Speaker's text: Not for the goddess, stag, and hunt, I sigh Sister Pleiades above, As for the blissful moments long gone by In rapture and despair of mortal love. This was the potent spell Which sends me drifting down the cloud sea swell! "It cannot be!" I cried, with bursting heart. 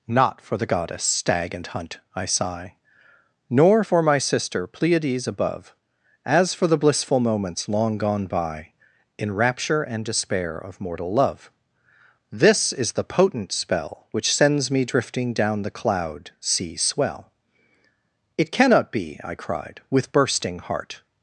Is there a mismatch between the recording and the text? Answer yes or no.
yes